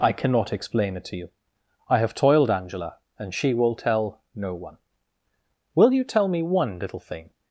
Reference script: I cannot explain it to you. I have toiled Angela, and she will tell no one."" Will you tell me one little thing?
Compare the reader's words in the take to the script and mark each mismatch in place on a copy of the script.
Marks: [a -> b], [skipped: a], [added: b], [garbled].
I cannot explain it to you. I have toiled Angela, and she will tell no one."" Will you tell me one little thing?